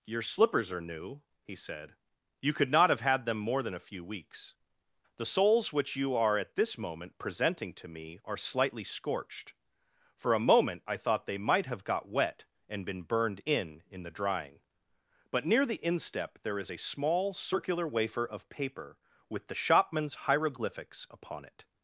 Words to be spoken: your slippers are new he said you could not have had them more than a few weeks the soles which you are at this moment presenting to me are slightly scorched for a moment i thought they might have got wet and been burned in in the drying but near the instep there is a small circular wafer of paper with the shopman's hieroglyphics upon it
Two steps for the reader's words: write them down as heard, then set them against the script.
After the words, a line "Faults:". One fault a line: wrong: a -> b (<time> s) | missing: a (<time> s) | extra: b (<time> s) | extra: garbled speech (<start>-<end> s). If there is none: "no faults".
your slippers are new he said you could not have had them more than a few weeks the soles which you are at this moment presenting to me are slightly scorched for a moment i thought they might have got wet and been burned in in the drying but near the instep there is a small circular wafer of paper with the shopman's hieroglyphics upon it
Faults:
no faults